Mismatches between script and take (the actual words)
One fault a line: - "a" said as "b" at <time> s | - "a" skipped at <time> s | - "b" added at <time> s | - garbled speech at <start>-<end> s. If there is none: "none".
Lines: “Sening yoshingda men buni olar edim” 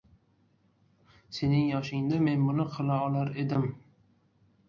- "qila" added at 2.8 s